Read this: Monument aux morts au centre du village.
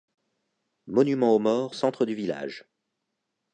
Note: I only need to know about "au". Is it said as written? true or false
false